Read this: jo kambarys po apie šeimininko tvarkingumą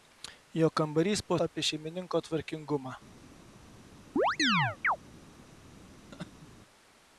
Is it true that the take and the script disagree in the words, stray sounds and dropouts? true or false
true